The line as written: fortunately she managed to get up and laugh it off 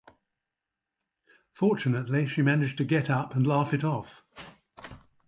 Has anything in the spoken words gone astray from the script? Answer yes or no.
no